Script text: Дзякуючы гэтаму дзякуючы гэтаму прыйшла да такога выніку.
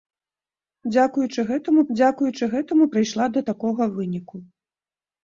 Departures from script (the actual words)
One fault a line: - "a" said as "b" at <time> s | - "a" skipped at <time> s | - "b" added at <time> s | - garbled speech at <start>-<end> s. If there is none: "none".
none